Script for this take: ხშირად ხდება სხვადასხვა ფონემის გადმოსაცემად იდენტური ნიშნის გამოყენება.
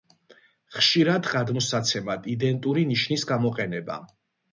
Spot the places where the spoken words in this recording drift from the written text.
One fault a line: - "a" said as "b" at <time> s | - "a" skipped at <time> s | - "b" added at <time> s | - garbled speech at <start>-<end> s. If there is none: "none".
- "ხდება სხვადასხვა ფონემის" skipped at 1.3 s